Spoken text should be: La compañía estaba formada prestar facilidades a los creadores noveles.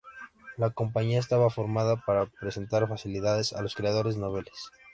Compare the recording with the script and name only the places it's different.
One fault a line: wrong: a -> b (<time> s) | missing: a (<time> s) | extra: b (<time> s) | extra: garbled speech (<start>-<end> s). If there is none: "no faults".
extra: para (2.1 s)